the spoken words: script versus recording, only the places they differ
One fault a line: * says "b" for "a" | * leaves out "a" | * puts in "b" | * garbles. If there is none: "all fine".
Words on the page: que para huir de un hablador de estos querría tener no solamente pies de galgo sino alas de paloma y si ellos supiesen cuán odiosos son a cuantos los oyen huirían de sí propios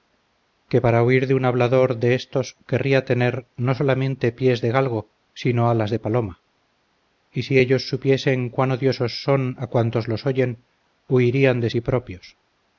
all fine